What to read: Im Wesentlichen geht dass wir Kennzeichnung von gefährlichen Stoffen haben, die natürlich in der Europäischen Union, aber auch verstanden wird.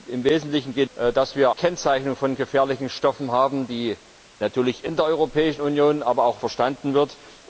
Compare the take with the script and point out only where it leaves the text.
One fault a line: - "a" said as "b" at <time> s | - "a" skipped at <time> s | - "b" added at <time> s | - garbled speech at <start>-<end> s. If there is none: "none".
none